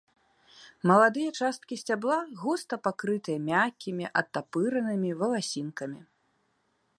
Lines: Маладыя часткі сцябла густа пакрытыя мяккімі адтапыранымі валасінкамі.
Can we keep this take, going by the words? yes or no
yes